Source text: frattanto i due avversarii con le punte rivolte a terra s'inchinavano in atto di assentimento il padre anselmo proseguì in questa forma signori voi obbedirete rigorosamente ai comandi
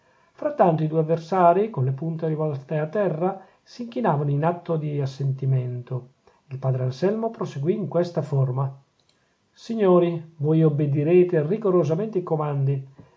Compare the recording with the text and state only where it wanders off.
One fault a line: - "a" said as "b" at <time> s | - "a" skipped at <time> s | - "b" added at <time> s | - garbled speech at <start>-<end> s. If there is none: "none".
none